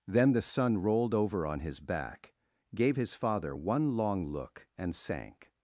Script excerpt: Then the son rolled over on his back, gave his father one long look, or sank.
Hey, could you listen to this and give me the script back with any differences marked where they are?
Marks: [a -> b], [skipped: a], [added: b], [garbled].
Then the son rolled over on his back, gave his father one long look, [or -> and] sank.